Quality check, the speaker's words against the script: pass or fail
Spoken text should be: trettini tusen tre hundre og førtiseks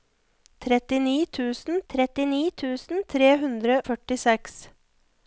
fail